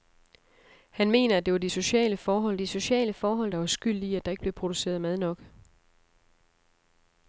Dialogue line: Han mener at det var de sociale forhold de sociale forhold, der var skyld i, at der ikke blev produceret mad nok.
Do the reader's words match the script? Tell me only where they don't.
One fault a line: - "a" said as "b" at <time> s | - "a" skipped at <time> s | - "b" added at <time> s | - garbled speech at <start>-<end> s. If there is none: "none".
none